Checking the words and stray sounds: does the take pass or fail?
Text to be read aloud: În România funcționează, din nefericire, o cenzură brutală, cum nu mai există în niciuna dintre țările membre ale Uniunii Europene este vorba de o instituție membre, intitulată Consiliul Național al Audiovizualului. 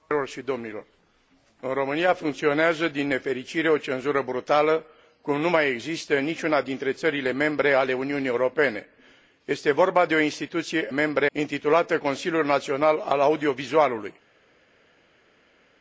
pass